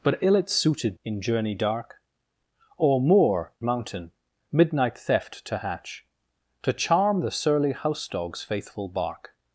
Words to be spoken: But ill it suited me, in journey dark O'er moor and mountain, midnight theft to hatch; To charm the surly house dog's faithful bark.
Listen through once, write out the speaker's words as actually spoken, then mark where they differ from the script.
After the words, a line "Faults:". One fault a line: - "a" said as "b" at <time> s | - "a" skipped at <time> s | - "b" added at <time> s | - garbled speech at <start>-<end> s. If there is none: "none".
But ill it suited in journey dark O'er moor mountain, midnight theft to hatch; To charm the surly house dog's faithful bark.
Faults:
- "me" skipped at 1.0 s
- "and" skipped at 3.5 s